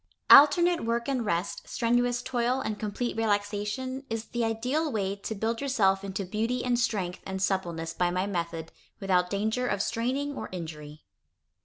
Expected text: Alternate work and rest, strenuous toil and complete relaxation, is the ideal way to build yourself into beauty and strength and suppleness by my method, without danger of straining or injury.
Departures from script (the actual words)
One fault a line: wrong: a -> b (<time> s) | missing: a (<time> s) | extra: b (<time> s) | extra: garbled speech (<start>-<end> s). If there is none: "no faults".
no faults